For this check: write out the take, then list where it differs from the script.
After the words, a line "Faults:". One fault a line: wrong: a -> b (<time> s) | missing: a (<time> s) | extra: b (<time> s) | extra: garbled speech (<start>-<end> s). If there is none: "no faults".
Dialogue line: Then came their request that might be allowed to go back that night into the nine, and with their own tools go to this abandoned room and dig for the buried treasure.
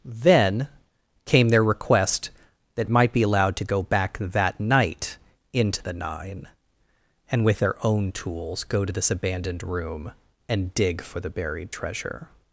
Then came their request that might be allowed to go back that night into the nine, and with their own tools go to this abandoned room and dig for the buried treasure.
Faults:
no faults